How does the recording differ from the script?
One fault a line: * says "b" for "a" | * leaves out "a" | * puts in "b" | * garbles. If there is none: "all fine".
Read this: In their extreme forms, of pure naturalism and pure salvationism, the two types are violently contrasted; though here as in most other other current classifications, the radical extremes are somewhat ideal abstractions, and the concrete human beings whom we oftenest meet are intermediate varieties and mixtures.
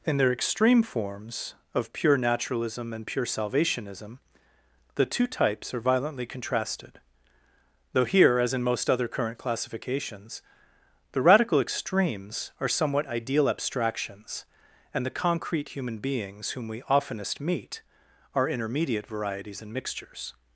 * leaves out "other"